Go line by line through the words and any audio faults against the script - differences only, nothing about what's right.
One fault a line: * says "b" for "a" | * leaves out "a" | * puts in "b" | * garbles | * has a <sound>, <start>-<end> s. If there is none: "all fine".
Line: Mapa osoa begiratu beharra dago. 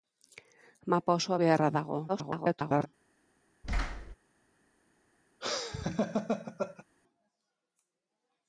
* leaves out "begiratu"
* garbles
* has a thud, 3.6-4.2 s
* has a laugh, 5.4-6.8 s